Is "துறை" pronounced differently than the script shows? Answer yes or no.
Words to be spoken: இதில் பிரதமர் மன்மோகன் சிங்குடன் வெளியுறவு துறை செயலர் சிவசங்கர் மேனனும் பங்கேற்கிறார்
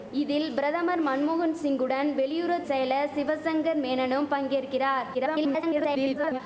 yes